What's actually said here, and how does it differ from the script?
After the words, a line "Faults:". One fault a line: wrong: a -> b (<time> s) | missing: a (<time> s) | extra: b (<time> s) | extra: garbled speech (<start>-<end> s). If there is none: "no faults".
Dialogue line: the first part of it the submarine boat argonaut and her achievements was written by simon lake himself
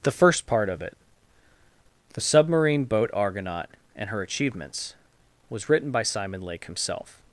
the first part of it the submarine boat argonaut and her achievements was written by simon lake himself
Faults:
no faults